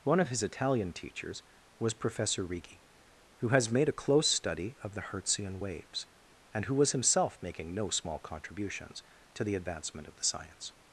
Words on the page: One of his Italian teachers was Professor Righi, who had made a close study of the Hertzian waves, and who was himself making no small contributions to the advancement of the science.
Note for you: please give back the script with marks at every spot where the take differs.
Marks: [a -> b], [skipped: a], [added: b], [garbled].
One of his Italian teachers was Professor Righi, who [had -> has] made a close study of the Hertzian waves, and who was himself making no small contributions to the advancement of the science.